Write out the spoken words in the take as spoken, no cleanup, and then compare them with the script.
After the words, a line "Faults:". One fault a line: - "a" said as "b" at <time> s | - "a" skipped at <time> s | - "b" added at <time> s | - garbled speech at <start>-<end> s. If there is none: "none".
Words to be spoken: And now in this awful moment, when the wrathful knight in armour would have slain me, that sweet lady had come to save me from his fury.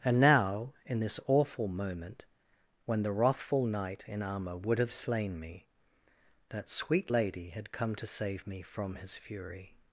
And now in this awful moment, when the wrathful knight in armour would have slain me, that sweet lady had come to save me from his fury.
Faults:
none